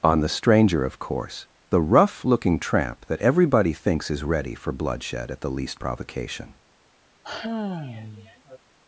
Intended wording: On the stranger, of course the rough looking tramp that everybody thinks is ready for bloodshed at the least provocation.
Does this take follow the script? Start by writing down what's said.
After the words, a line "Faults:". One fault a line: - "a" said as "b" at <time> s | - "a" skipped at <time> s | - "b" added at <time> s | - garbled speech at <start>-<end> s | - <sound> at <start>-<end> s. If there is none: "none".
On the stranger, of course the rough looking tramp that everybody thinks is ready for bloodshed at the least provocation.
Faults:
- sigh at 7.2-8.6 s